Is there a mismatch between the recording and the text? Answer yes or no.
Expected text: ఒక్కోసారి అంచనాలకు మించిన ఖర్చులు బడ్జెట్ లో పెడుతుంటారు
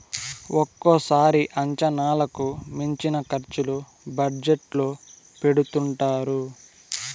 no